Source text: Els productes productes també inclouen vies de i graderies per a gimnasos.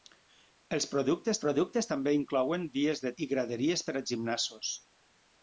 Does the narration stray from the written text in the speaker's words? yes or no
no